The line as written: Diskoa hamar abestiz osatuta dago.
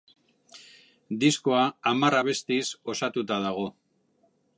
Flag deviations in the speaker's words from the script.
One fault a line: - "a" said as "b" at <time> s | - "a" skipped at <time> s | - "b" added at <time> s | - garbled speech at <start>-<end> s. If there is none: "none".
none